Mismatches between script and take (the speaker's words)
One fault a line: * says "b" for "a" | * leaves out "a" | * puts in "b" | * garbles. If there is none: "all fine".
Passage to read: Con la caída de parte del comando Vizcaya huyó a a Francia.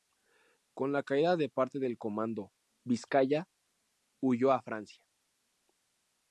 * leaves out "a"